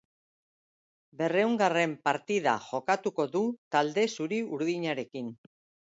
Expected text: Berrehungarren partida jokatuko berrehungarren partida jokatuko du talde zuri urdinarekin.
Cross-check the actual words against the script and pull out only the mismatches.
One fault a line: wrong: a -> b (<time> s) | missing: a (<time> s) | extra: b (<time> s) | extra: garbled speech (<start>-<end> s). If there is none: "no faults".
missing: berrehungarren partida jokatuko (3.3 s)